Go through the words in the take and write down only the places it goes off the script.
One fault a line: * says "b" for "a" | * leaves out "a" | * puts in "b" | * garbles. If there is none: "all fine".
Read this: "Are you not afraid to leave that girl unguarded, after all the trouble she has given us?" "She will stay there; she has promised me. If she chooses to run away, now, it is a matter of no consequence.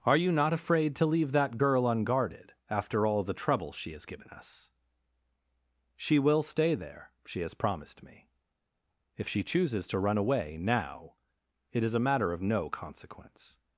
all fine